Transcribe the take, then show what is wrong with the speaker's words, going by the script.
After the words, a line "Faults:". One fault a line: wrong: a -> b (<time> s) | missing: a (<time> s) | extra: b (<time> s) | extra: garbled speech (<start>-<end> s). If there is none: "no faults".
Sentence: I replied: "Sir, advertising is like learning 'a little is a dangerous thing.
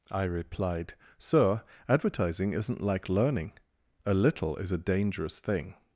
I replied: "Sir, advertising isn't like learning 'a little is a dangerous thing.
Faults:
wrong: is -> isn't (2.5 s)